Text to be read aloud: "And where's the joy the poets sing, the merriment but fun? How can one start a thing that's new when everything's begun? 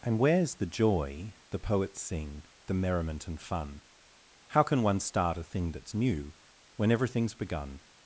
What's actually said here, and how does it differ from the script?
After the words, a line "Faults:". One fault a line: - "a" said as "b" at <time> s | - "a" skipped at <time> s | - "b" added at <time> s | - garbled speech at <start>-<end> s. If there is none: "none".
"And where's the joy the poets sing, the merriment and fun? How can one start a thing that's new when everything's begun?
Faults:
- "but" said as "and" at 3.3 s